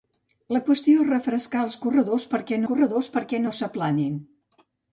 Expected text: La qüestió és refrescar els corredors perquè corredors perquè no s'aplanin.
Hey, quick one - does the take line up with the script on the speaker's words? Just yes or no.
yes